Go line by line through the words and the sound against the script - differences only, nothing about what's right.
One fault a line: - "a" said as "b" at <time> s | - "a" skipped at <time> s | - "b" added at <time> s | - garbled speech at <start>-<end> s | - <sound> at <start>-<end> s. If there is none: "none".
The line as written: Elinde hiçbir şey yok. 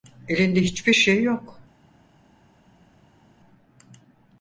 none